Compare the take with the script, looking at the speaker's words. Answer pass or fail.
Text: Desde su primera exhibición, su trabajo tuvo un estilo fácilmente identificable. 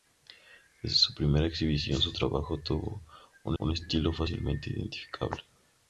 fail